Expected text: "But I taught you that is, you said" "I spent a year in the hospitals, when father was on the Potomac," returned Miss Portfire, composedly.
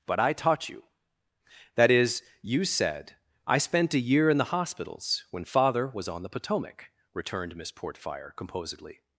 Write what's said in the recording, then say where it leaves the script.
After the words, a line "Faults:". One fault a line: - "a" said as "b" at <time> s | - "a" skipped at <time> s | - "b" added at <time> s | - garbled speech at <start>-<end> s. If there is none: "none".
"But I taught you that is, you said" "I spent a year in the hospitals, when father was on the Potomac," returned Miss Portfire, composedly.
Faults:
none